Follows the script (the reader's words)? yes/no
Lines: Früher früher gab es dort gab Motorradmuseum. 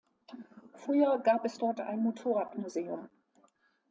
no